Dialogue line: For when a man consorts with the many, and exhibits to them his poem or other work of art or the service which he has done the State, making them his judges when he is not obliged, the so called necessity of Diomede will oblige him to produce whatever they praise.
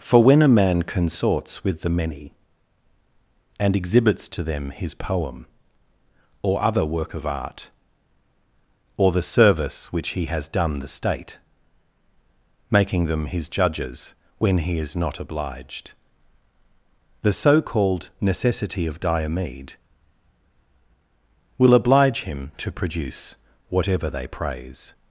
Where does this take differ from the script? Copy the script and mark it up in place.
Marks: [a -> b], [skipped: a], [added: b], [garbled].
For when a man consorts with the many, and exhibits to them his poem or other work of art or the service which he has done the State, making them his judges when he is not obliged, the so called necessity of Diomede will oblige him to produce whatever they praise.